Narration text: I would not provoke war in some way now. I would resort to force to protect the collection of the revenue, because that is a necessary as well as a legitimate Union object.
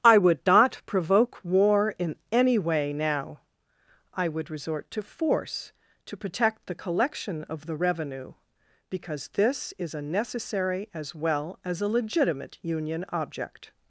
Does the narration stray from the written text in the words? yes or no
yes